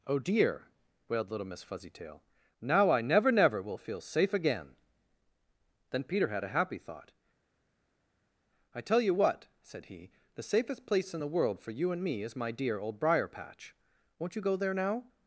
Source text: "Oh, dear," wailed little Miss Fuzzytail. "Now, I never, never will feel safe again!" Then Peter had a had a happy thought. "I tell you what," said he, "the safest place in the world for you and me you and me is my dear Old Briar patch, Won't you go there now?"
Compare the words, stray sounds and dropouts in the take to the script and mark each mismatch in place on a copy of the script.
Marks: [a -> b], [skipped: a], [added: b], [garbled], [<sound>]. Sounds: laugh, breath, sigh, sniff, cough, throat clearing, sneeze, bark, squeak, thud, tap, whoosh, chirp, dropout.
"Oh, dear," wailed little Miss Fuzzytail. "Now, I never, never will feel safe again!" Then Peter had a [skipped: had a] happy thought. "I tell you what," said he, "the safest place in the world for you and me [skipped: you and me] is my dear Old Briar patch, Won't you go there now?"